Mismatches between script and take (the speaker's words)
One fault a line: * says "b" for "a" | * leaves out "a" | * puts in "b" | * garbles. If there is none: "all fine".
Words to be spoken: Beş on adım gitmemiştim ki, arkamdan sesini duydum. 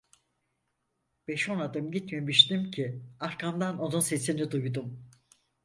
* puts in "onun"